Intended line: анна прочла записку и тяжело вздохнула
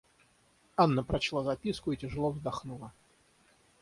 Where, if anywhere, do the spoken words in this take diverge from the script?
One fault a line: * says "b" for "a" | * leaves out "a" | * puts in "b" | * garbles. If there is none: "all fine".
all fine